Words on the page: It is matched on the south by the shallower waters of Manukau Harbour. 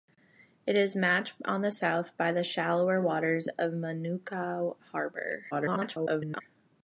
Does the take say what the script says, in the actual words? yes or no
no